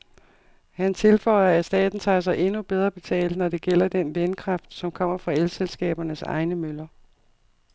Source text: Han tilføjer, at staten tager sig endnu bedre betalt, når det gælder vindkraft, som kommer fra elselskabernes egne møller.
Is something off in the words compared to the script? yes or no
yes